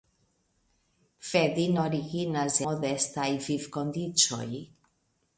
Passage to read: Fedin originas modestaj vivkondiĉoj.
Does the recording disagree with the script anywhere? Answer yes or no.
no